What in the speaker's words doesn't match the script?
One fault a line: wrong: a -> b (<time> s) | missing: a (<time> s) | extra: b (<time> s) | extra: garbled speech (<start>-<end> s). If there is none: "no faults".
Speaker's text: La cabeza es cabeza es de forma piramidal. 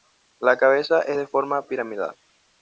missing: cabeza es (1.2 s)